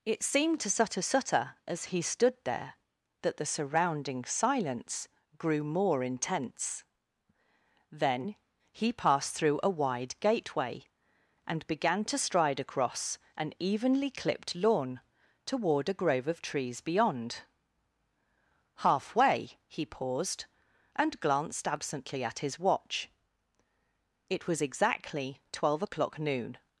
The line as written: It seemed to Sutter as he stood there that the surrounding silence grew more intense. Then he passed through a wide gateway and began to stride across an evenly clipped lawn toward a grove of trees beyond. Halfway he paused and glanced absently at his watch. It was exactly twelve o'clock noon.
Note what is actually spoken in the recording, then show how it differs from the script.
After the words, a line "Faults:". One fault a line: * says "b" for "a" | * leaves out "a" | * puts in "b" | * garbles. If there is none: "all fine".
It seemed to Sutter Sutter as he stood there that the surrounding silence grew more intense. Then he passed through a wide gateway and began to stride across an evenly clipped lawn toward a grove of trees beyond. Halfway he paused and glanced absently at his watch. It was exactly twelve o'clock noon.
Faults:
* puts in "Sutter"